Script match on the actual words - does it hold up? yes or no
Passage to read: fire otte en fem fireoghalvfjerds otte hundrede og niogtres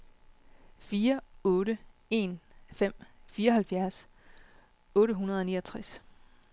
yes